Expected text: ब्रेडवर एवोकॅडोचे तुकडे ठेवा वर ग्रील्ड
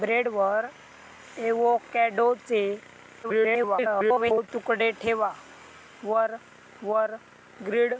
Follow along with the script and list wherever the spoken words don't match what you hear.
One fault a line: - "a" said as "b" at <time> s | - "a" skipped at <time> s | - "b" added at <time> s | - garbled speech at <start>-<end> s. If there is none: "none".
- garbled speech at 3.2-4.5 s
- "वर" added at 6.8 s